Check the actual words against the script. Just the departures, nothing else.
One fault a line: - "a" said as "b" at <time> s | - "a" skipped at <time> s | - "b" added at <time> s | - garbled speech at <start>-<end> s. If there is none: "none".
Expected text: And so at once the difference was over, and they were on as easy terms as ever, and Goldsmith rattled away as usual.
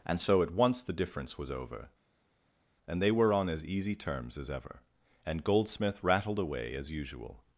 none